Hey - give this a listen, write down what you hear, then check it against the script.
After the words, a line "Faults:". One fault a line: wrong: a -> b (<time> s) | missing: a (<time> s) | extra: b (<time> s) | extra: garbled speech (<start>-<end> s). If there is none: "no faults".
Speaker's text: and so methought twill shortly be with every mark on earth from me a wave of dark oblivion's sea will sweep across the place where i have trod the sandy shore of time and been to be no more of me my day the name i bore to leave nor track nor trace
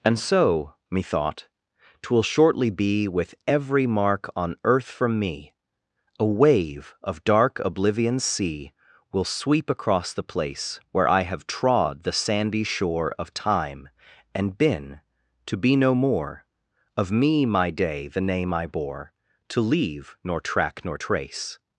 and so methought twill shortly be with every mark on earth from me a wave of dark oblivion's sea will sweep across the place where i have trod the sandy shore of time and been to be no more of me my day the name i bore to leave nor track nor trace
Faults:
no faults